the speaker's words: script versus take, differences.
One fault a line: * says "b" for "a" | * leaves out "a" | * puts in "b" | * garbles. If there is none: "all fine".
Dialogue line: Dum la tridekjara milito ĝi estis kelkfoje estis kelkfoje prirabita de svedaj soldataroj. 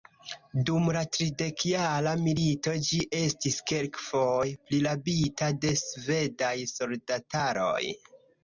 * leaves out "estis kelkfoje"